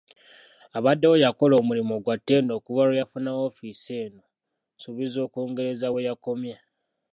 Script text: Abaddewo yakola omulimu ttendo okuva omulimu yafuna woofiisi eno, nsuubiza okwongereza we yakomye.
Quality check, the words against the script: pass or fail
fail